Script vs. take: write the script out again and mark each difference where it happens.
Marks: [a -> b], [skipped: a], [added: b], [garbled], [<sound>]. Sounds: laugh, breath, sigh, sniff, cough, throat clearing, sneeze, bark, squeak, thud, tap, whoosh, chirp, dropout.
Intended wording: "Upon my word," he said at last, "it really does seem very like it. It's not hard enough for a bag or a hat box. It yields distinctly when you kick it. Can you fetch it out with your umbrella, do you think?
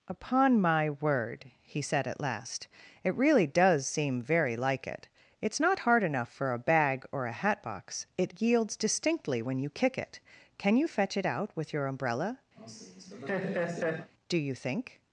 "Upon my word," he said at last, "it really does seem very like it. It's not hard enough for a bag or a hat box. It yields distinctly when you kick it. Can you fetch it out with your umbrella, [laugh] do you think?